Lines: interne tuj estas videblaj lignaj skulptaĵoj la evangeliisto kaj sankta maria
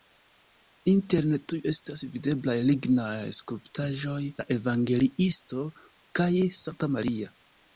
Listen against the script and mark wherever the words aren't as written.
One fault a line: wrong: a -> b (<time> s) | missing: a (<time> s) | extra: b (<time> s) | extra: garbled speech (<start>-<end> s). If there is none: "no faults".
no faults